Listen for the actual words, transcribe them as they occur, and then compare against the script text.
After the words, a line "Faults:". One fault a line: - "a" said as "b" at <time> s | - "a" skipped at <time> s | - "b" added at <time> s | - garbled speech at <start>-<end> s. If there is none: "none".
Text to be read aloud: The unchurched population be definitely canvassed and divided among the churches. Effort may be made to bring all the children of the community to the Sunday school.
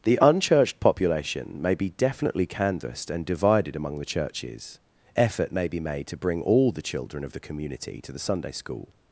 The unchurched population may be definitely canvassed and divided among the churches. Effort may be made to bring all the children of the community to the Sunday school.
Faults:
- "may" added at 1.6 s